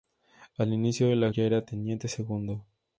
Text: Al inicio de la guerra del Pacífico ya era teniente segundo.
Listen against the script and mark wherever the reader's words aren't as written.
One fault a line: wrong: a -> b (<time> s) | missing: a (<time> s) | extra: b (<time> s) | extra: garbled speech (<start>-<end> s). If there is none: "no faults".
missing: guerra del Pacífico (1.3 s)